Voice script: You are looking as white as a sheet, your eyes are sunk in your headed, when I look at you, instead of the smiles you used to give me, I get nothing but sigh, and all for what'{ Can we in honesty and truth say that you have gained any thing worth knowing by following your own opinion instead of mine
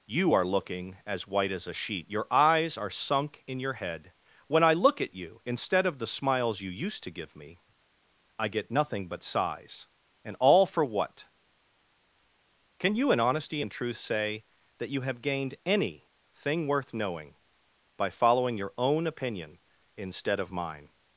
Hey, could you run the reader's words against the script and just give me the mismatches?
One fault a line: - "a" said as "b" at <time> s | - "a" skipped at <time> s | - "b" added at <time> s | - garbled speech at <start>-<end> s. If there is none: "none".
- "headed" said as "head" at 3.7 s
- "sigh" said as "sighs" at 9.2 s
- "we" said as "you" at 13.0 s